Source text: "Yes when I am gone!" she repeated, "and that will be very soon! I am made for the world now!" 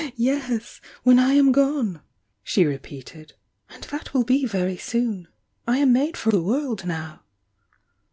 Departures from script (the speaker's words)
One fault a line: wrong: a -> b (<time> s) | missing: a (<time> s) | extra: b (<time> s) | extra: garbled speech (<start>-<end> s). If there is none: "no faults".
no faults